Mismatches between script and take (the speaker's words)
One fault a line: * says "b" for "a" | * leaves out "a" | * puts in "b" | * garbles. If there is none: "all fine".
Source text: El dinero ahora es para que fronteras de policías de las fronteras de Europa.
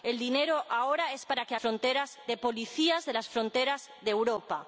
all fine